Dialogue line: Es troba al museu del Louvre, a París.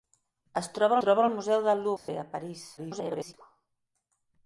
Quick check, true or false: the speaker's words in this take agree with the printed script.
false